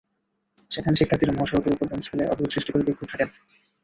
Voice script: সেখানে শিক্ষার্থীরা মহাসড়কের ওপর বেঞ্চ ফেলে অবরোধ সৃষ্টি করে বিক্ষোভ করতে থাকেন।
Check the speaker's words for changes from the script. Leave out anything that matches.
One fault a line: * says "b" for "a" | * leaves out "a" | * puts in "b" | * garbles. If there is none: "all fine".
* leaves out "করতে"